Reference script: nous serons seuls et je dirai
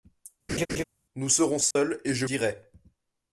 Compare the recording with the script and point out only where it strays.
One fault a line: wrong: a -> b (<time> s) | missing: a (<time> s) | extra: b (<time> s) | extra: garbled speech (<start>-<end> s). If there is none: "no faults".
no faults